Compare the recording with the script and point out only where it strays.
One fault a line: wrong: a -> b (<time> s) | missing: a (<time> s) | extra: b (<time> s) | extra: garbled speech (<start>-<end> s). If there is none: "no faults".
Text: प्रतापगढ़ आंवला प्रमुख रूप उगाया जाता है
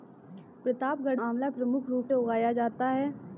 no faults